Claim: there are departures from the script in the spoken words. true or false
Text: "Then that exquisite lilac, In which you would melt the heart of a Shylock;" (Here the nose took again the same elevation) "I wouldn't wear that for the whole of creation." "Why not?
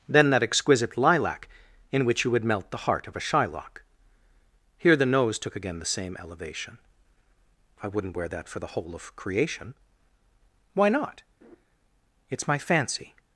true